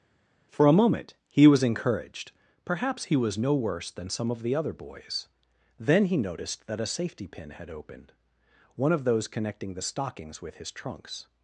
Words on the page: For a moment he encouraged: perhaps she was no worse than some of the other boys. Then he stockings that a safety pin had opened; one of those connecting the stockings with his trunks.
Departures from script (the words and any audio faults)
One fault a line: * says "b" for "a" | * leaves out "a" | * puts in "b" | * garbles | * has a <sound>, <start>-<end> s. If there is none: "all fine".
* puts in "was"
* says "he" for "she"
* says "noticed" for "stockings"